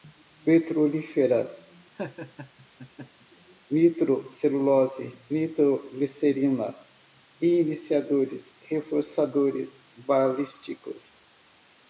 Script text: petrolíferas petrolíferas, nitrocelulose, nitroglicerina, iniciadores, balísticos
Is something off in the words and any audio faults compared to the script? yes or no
yes